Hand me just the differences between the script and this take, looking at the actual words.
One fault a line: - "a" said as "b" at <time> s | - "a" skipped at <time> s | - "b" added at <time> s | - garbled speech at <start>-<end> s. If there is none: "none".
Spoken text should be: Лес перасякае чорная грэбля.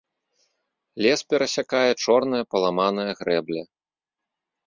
- "паламаная" added at 2.5 s